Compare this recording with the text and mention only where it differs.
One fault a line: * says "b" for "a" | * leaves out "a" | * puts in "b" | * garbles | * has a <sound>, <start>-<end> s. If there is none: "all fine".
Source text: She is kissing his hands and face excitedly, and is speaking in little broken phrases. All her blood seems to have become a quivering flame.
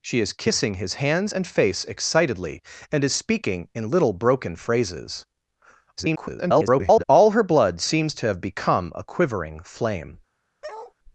* garbles
* has a bark, 10.6-10.9 s